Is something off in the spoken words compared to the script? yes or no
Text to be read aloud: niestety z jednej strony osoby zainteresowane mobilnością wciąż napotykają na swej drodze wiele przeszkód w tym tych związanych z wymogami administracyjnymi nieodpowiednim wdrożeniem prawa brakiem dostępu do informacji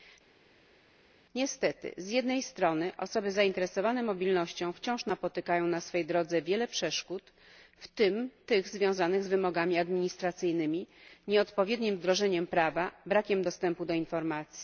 no